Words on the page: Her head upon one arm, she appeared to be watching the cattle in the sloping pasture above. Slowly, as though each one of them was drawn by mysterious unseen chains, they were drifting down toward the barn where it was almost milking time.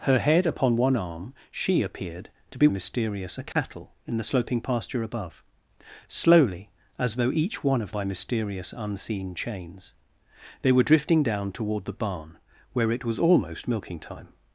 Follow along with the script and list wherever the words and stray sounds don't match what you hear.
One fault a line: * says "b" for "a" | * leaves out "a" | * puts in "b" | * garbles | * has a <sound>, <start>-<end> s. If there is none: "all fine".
* says "mysterious" for "watching"
* has a dropout, 3.5-3.6 s
* leaves out "them was drawn"